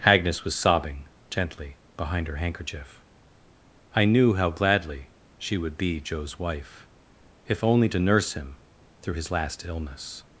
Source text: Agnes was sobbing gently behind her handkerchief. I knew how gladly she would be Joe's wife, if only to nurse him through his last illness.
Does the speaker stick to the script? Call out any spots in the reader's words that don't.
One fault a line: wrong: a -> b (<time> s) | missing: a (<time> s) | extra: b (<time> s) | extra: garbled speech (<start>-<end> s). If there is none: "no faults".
no faults